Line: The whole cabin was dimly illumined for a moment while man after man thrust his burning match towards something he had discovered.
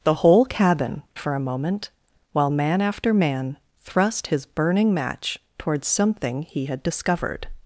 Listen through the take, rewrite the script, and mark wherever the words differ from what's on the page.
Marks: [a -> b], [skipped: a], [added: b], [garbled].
The whole cabin [skipped: was dimly illumined] for a moment while man after man thrust his burning match towards something he had discovered.